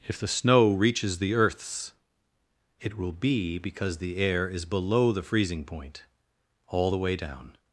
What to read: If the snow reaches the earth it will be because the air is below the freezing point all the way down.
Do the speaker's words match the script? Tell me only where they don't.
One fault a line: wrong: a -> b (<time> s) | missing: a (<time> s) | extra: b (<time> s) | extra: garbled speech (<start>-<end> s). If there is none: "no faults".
wrong: earth -> earths (1.3 s)